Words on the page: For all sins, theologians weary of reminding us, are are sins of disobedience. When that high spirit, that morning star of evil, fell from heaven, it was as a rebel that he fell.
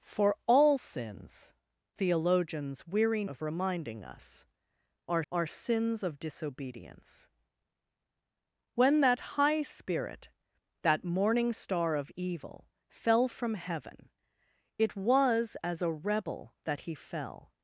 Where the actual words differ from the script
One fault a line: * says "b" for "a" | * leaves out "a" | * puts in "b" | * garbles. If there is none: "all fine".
all fine